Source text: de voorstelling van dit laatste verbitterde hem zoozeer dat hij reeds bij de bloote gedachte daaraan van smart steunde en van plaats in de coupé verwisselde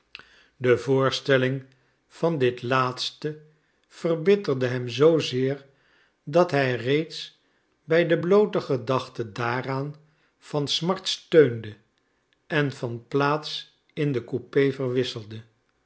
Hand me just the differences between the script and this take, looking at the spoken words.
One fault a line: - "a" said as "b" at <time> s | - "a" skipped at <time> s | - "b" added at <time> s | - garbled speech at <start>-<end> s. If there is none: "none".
none